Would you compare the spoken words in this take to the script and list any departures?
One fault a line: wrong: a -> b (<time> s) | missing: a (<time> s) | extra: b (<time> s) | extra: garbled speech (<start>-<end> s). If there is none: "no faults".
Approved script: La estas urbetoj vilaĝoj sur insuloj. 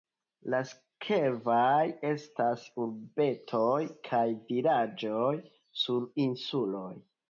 extra: sekvaj (0.7 s)
extra: kaj (4.1 s)